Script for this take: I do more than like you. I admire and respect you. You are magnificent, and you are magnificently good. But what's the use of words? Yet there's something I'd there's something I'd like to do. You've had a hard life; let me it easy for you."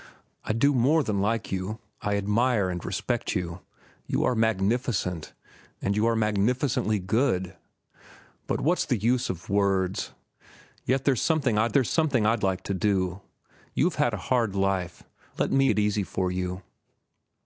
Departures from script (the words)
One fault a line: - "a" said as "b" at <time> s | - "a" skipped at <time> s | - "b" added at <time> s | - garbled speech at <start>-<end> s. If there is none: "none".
none